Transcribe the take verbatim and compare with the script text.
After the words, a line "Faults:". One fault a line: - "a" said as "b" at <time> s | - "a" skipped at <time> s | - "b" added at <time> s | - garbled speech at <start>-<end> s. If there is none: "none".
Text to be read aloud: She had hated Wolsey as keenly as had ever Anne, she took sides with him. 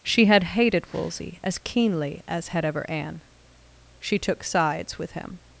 She had hated Wolsey as keenly as had ever Anne, she took sides with him.
Faults:
none